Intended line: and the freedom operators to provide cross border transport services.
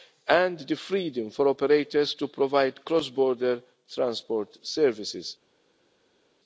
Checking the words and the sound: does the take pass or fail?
fail